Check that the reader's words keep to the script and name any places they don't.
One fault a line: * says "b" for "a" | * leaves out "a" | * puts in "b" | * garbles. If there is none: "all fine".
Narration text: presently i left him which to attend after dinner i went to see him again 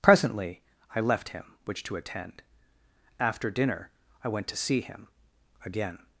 all fine